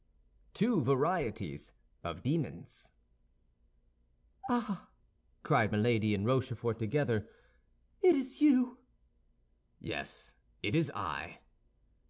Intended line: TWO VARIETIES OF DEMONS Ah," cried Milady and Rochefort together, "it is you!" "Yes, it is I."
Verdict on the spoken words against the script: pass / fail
pass